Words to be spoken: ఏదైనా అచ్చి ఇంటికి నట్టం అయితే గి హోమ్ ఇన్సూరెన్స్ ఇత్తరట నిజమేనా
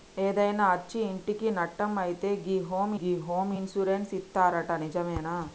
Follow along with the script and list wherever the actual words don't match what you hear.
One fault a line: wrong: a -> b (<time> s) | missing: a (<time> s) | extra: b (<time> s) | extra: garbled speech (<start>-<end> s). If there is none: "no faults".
extra: గి హోమ్ (3.0 s)